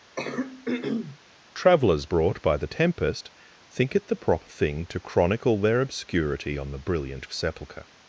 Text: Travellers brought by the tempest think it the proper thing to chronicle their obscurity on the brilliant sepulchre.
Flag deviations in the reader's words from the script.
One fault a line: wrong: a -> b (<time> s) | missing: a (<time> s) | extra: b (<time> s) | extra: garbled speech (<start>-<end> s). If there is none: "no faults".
no faults